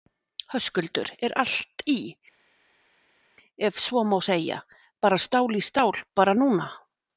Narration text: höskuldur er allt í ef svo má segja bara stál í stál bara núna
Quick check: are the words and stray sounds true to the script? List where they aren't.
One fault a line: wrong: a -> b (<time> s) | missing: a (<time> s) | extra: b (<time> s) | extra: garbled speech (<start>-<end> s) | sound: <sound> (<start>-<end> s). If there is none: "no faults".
no faults